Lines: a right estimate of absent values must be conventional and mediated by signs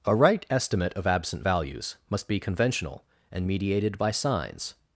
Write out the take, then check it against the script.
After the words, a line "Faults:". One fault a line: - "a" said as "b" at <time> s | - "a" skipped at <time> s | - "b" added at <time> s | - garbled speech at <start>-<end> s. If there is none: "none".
a right estimate of absent values must be conventional and mediated by signs
Faults:
none